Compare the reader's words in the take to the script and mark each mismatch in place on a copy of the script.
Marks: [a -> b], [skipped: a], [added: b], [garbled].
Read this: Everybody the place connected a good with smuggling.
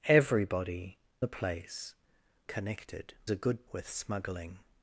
Everybody the place connected a good with smuggling.